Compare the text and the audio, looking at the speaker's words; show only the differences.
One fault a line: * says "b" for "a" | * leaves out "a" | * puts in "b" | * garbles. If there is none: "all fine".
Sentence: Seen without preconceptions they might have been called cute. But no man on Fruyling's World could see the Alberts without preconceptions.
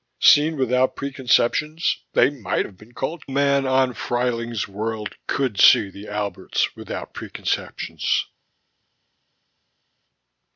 * leaves out "cute But no"